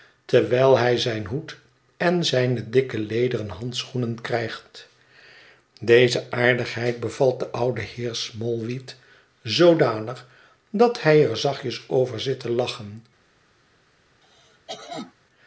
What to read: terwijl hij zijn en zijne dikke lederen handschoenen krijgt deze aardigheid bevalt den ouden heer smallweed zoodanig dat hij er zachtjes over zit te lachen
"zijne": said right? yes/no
yes